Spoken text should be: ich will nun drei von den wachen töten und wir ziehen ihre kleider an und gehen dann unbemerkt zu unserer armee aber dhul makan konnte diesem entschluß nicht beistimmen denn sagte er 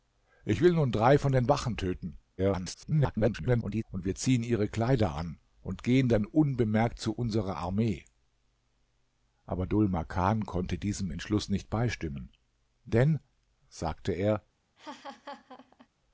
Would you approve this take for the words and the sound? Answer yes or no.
no